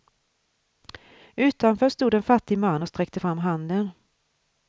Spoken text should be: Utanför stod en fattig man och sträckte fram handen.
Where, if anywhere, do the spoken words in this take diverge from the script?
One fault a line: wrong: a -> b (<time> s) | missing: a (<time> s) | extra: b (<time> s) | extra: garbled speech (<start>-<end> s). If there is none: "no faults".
no faults